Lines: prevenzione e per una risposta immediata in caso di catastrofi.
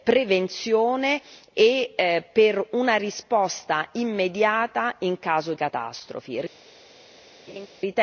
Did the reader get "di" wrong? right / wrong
wrong